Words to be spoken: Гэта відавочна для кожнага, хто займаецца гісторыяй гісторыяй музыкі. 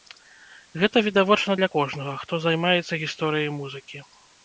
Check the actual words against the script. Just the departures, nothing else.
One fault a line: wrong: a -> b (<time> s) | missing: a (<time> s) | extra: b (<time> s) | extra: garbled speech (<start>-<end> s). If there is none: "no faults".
missing: гісторыяй (3.5 s)